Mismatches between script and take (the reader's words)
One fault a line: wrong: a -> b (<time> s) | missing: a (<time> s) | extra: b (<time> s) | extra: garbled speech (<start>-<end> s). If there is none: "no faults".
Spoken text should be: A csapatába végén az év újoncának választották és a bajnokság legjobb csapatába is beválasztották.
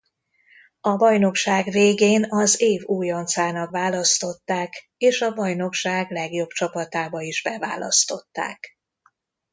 wrong: csapatába -> bajnokság (0.9 s)